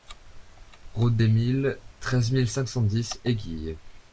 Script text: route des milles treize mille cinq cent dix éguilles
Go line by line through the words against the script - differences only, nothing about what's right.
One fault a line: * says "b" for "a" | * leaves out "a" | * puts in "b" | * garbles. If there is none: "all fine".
all fine